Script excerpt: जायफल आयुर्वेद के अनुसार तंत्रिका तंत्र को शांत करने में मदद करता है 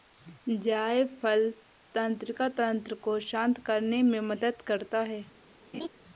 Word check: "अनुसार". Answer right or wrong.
wrong